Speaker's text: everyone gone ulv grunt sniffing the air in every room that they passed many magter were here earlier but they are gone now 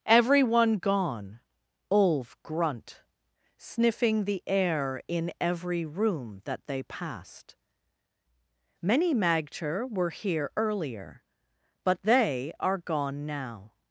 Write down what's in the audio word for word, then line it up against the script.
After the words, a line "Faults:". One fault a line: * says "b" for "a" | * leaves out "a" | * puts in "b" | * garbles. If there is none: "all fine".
everyone gone ulv grunt sniffing the air in every room that they passed many magter were here earlier but they are gone now
Faults:
all fine